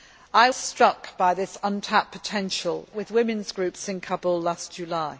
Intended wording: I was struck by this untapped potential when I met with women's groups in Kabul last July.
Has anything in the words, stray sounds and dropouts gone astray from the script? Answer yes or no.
yes